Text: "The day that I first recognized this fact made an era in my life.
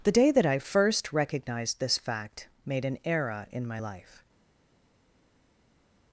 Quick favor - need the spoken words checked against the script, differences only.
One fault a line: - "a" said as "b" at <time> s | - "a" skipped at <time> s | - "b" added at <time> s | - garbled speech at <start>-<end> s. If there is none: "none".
none